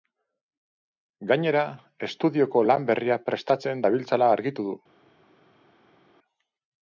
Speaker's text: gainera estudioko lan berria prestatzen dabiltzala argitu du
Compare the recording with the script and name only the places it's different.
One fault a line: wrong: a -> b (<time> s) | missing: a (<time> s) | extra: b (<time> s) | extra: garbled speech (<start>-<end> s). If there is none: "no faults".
no faults